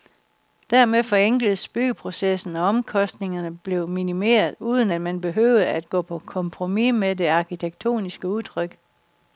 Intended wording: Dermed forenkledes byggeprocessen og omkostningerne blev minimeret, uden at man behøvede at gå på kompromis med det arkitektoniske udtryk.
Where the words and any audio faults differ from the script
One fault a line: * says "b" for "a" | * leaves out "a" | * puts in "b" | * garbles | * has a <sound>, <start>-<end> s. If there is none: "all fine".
all fine